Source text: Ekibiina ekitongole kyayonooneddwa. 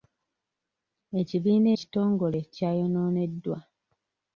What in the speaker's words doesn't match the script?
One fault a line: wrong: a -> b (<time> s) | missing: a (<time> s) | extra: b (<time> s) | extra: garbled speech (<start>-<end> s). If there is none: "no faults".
no faults